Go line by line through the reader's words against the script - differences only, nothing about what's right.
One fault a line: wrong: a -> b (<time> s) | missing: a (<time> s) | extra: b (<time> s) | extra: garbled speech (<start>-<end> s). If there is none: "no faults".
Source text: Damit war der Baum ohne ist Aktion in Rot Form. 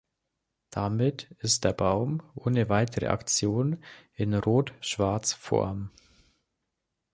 wrong: war -> ist (1.4 s)
wrong: ist -> weitere (2.7 s)
extra: Schwarz (4.8 s)